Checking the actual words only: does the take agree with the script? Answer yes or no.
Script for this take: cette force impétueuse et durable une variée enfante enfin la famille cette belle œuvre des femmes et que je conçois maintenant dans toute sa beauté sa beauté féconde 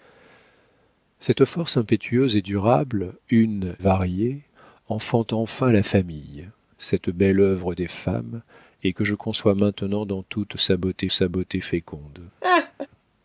yes